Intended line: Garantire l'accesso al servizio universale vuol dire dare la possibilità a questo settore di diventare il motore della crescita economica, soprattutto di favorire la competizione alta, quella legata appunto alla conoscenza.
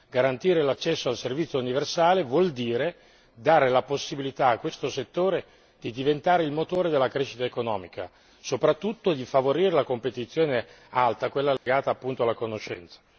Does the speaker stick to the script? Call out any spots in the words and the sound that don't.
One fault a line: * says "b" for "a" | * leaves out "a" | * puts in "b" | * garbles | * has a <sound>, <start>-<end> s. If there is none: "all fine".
* has a dropout, 11.6-11.7 s